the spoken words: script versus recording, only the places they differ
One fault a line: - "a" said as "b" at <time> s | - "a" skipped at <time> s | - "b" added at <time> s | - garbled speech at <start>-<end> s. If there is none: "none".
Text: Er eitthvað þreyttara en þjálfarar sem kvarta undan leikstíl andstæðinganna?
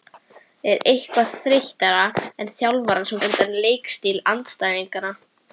- "kvarta" skipped at 3.2 s